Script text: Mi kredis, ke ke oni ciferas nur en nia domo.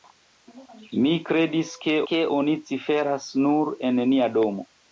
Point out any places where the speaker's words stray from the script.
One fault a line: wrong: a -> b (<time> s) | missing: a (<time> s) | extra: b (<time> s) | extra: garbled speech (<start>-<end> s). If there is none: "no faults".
no faults